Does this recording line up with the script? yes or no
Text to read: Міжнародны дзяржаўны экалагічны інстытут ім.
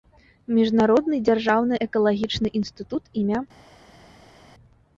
yes